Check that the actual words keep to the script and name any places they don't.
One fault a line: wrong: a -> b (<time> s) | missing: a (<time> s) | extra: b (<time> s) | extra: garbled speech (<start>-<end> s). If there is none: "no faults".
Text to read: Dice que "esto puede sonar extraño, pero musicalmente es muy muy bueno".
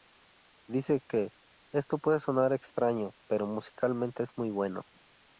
missing: muy (4.5 s)